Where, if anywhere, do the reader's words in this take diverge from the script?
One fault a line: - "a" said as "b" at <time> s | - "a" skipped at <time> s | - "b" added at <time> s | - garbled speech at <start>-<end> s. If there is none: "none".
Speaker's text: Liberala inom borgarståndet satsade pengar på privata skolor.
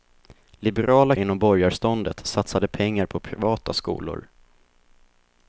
none